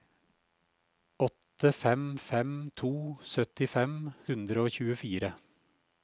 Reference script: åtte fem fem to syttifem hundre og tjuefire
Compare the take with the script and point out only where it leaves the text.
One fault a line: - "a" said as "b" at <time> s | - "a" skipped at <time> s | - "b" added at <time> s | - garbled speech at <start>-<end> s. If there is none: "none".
none